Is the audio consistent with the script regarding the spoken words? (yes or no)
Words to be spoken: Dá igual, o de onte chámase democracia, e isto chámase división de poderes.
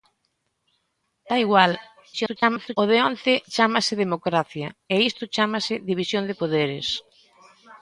no